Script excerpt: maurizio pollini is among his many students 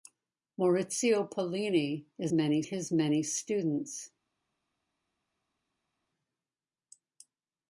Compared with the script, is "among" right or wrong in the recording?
wrong